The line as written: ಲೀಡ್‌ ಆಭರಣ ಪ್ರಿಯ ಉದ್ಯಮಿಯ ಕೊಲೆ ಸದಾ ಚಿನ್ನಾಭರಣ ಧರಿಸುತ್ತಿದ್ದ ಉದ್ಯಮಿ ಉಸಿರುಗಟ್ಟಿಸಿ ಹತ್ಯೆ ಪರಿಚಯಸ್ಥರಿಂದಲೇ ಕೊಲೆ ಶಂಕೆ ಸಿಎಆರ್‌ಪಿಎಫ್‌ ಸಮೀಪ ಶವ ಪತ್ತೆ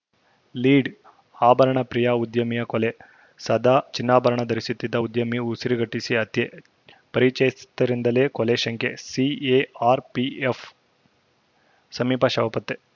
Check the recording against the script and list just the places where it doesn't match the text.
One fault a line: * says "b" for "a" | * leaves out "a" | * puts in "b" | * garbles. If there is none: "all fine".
all fine